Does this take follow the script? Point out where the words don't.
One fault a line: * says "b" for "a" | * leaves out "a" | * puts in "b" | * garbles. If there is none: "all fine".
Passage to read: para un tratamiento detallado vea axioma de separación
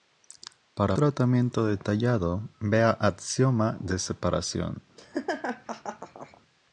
* leaves out "un"